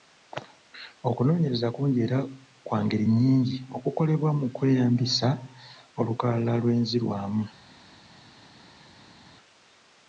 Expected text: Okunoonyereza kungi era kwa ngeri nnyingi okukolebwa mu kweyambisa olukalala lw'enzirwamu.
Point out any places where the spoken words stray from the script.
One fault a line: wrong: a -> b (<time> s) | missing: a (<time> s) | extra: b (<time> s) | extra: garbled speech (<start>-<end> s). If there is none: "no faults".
no faults